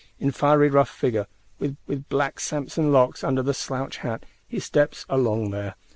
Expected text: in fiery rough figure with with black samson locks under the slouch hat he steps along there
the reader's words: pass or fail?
pass